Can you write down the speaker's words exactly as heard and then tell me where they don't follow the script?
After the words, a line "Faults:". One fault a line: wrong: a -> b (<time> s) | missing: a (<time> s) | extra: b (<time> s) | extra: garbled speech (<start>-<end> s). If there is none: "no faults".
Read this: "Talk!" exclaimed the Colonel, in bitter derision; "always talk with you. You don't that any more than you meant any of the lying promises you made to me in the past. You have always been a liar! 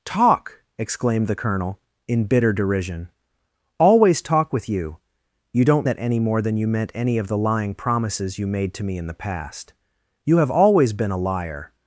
"Talk!" exclaimed the Colonel, in bitter derision; "always talk with you. You don't that any more than you meant any of the lying promises you made to me in the past. You have always been a liar!
Faults:
no faults